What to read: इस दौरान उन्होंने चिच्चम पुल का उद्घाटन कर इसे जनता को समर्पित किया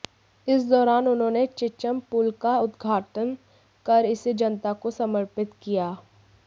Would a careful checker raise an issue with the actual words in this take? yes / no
no